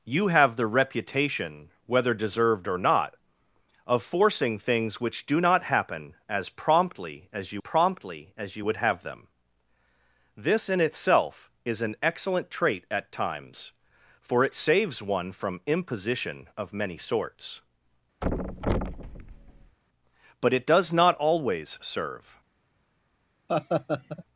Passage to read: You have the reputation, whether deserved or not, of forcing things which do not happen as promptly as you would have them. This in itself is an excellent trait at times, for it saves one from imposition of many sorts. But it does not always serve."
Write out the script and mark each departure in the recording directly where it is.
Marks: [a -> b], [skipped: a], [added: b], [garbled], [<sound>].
You have the reputation, whether deserved or not, of forcing things which do not happen as promptly as you [added: promptly as you] would have them. This in itself is an excellent trait at times, for it saves one from imposition of many sorts. [thud] But it does not always serve." [laugh]